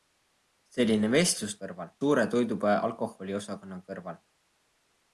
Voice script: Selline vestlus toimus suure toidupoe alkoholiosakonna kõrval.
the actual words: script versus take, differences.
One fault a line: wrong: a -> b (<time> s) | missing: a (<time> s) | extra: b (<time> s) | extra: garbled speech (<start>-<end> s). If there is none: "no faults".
wrong: toimus -> kõrval (1.6 s)